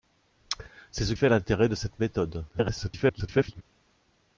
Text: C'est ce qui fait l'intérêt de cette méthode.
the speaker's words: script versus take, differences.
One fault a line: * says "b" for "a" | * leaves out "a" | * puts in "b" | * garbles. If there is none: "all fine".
* leaves out "qui"
* garbles